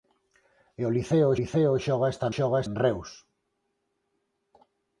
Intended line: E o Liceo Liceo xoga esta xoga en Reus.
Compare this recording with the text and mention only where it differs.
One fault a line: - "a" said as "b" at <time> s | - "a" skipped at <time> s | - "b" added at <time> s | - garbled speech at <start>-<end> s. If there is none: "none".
none